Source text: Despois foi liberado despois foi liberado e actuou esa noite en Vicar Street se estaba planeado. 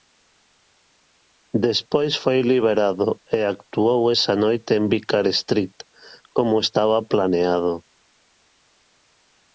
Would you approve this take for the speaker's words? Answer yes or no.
no